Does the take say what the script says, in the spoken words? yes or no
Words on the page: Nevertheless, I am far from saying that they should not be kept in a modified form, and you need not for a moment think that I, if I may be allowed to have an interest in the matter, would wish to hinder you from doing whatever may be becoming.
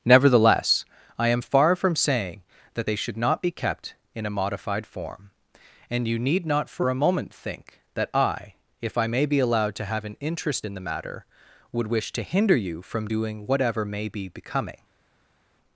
yes